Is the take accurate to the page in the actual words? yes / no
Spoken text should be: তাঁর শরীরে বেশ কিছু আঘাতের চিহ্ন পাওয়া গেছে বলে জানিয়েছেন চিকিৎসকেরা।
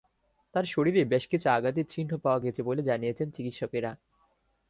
yes